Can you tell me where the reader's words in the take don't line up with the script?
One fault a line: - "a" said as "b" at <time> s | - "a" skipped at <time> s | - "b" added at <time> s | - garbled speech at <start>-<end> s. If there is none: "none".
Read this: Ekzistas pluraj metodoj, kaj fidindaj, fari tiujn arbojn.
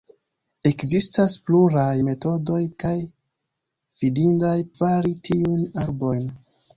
none